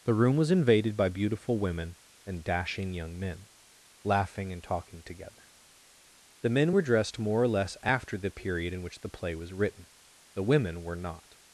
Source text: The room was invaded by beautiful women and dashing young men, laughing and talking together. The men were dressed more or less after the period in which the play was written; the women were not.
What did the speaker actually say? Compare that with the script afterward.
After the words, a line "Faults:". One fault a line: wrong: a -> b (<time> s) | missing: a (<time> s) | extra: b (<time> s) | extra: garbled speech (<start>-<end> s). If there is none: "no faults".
The room was invaded by beautiful women and dashing young men, laughing and talking together. The men were dressed more or less after the period in which the play was written; the women were not.
Faults:
no faults